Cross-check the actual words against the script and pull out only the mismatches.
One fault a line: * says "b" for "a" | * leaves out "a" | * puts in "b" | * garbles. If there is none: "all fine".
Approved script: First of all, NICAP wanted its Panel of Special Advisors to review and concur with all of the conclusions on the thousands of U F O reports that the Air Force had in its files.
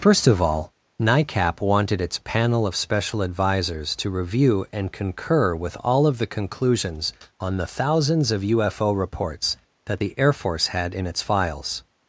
all fine